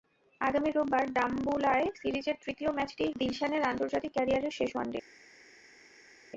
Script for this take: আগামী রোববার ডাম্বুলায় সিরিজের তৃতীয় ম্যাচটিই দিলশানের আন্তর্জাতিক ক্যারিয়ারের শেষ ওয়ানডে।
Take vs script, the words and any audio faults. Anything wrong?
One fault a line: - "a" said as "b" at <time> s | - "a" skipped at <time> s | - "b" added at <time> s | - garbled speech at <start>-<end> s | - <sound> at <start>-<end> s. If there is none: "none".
none